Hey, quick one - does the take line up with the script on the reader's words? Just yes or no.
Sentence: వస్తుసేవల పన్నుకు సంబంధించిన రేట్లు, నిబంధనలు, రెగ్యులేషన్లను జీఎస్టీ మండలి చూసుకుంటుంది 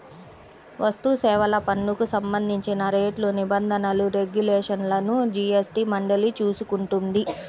yes